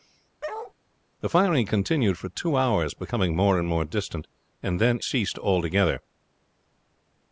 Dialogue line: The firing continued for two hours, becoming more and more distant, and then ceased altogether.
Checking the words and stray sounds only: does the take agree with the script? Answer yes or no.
no